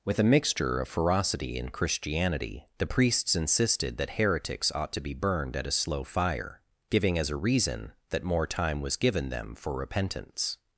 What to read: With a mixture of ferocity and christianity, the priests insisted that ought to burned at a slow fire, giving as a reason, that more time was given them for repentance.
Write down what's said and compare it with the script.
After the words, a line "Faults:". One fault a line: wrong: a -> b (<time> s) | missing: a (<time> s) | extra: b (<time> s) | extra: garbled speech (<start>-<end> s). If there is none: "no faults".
With a mixture of ferocity and christianity, the priests insisted that heretics ought to be burned at a slow fire, giving as a reason, that more time was given them for repentance.
Faults:
extra: heretics (4.1 s)
extra: be (5.0 s)